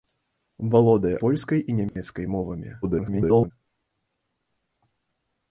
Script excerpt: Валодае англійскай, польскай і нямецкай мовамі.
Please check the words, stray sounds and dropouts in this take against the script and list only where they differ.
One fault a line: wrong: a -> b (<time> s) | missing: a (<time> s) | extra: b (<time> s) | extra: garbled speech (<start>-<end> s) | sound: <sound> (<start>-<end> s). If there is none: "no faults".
missing: англійскай (1.2 s)
sound: dropout (1.9-2.0 s)
extra: garbled speech (2.8-3.5 s)